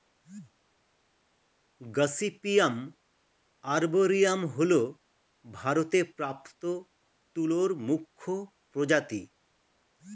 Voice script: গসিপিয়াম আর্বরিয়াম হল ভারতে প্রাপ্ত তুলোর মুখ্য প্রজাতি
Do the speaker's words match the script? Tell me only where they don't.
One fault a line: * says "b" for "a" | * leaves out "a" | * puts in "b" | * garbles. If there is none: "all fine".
all fine